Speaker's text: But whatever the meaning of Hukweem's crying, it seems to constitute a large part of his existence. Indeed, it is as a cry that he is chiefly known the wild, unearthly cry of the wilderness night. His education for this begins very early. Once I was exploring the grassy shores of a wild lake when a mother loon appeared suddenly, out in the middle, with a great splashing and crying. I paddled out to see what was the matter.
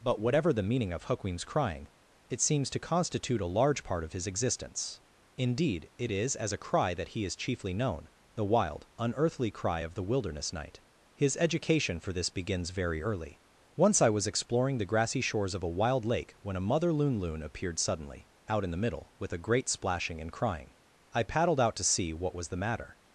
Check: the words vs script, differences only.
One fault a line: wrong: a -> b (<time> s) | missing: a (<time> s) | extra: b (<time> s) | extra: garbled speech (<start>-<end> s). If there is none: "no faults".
extra: loon (17.2 s)